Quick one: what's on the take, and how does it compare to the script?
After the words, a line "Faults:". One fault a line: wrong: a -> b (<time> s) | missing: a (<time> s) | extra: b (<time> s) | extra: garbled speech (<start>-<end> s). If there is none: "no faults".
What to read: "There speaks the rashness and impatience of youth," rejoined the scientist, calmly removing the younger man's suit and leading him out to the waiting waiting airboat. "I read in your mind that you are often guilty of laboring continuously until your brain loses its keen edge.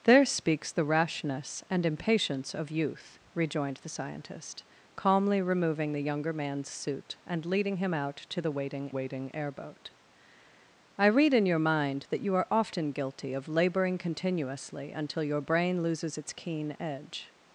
"There speaks the rashness and impatience of youth," rejoined the scientist, calmly removing the younger man's suit and leading him out to the waiting waiting airboat. "I read in your mind that you are often guilty of laboring continuously until your brain loses its keen edge.
Faults:
no faults